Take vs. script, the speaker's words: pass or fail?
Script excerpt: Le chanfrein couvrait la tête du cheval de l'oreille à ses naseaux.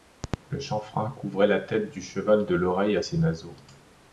pass